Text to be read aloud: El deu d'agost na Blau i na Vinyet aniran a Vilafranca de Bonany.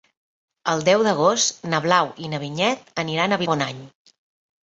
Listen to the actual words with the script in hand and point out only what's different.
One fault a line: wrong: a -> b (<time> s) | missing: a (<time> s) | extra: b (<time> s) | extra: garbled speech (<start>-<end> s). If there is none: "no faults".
missing: Vilafranca (3.4 s)